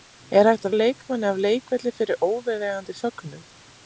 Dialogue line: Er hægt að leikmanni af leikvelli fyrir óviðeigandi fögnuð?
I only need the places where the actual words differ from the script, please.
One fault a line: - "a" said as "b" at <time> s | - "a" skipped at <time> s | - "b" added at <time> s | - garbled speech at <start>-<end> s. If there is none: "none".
none